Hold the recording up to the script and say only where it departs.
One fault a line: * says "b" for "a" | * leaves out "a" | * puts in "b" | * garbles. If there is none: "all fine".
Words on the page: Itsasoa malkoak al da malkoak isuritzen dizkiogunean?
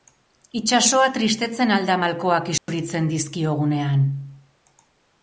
* says "tristetzen" for "malkoak"